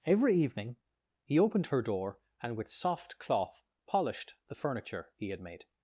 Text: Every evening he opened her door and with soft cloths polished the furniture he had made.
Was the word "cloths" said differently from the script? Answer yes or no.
yes